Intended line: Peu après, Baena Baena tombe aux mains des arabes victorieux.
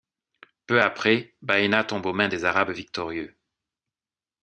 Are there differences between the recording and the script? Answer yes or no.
yes